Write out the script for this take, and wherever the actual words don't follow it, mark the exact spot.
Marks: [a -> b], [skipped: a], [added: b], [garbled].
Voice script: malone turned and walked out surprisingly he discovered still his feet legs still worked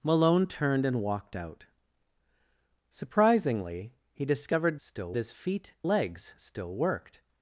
malone turned and walked out surprisingly he discovered still his feet legs still worked